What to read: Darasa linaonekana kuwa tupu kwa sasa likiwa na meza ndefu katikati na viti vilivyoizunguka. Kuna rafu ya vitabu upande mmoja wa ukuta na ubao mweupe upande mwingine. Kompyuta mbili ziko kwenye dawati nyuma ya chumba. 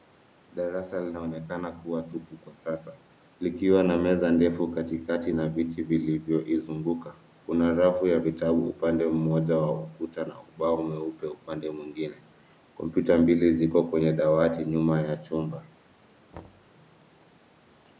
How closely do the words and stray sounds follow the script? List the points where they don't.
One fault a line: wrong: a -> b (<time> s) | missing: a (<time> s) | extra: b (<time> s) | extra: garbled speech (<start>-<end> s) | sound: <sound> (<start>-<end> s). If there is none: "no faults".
sound: thud (16.3-16.7 s)